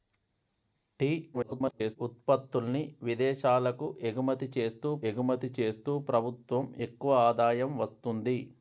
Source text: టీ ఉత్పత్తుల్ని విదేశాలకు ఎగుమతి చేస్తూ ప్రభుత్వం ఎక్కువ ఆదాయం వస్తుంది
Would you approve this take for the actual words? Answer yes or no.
no